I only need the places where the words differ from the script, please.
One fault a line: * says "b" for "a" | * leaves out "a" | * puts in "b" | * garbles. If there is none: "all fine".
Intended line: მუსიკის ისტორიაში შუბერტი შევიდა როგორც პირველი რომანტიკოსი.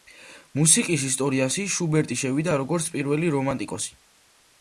all fine